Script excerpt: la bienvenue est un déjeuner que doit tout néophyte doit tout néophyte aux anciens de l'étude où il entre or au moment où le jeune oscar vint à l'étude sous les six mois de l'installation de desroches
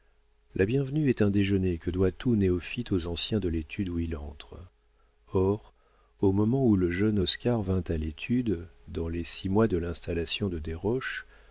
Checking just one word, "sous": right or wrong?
wrong